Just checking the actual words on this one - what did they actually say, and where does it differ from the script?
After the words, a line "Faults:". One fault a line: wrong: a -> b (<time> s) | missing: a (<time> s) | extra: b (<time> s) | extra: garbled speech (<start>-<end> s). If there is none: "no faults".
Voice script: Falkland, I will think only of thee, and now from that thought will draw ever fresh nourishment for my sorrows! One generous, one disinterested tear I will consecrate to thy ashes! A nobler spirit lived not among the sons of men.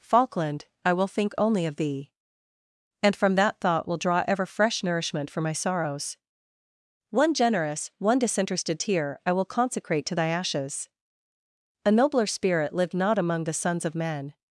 Falkland, I will think only of thee, and from that thought will draw ever fresh nourishment for my sorrows! One generous, one disinterested tear I will consecrate to thy ashes! A nobler spirit lived not among the sons of men.
Faults:
missing: now (3.1 s)